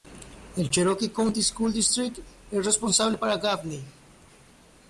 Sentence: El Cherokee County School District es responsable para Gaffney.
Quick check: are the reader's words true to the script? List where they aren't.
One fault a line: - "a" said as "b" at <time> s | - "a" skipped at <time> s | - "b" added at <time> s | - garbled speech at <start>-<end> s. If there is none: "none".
none